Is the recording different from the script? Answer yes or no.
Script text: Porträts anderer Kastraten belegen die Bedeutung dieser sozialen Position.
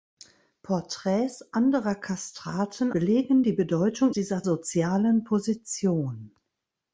no